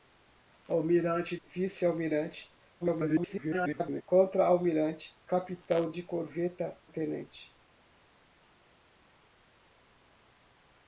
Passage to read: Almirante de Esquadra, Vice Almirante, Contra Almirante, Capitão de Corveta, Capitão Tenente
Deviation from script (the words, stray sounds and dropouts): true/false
true